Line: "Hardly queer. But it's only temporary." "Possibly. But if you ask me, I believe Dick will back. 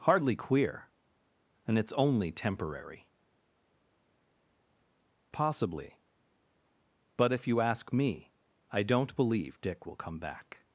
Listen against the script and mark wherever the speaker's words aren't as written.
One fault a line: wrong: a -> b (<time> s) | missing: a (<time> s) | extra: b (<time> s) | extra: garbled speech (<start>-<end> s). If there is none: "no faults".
wrong: But -> And (1.6 s)
extra: don't (8.8 s)
extra: come (10.0 s)